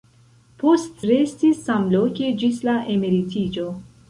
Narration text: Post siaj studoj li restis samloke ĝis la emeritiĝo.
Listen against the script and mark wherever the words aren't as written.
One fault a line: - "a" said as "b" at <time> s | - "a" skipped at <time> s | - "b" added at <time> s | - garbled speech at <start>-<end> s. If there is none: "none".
- "siaj studoj li" skipped at 1.0 s